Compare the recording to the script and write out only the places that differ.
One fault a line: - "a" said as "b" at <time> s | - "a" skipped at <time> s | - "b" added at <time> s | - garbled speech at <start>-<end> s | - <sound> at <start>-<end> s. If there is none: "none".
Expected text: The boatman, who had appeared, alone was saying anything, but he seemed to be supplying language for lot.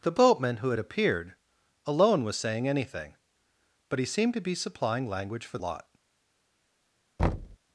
- thud at 7.2-7.6 s